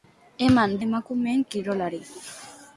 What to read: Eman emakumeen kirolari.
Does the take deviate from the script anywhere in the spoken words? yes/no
no